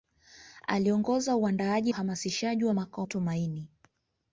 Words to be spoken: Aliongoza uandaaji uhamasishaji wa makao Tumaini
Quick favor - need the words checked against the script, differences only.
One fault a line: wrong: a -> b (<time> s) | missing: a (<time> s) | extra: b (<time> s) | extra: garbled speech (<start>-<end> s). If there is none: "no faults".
no faults